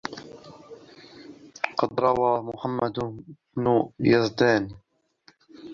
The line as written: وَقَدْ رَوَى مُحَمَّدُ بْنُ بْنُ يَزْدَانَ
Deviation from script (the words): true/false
true